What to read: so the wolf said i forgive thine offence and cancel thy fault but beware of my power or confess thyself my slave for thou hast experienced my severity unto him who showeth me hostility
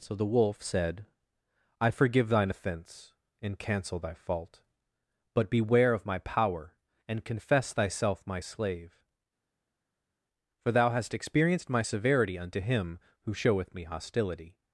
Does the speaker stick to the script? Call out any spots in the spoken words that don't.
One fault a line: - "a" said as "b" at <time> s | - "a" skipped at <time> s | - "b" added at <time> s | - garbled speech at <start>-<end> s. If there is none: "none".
- "or" said as "and" at 7.0 s